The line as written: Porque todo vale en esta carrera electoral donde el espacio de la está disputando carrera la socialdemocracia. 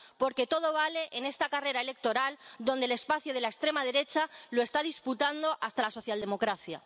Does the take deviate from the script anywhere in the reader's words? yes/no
yes